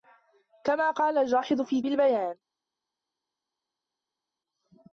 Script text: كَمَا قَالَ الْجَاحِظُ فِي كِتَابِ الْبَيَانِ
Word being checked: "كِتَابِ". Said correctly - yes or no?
no